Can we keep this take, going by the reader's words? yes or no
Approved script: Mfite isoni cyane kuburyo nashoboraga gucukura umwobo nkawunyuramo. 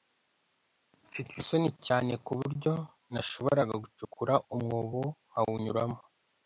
yes